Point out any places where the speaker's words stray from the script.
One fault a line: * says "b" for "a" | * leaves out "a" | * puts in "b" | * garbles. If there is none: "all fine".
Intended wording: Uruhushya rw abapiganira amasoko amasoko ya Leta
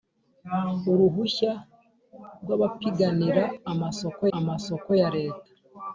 all fine